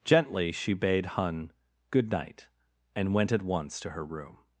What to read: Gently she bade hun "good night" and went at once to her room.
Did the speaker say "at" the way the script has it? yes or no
yes